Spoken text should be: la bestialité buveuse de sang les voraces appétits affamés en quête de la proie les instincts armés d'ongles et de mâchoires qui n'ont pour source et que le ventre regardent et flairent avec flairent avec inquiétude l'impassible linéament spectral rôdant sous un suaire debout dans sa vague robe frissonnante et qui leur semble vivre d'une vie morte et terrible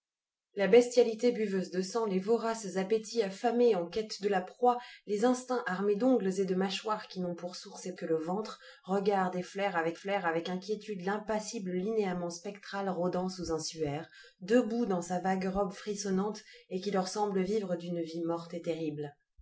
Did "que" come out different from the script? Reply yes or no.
no